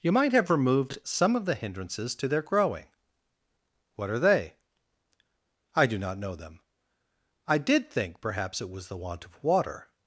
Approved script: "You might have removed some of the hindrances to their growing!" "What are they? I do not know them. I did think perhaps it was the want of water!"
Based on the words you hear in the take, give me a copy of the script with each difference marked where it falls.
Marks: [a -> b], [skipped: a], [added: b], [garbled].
"You might have removed some of the hindrances to their growing!" "What are they? I do not know them. I did think perhaps it was the want of water!"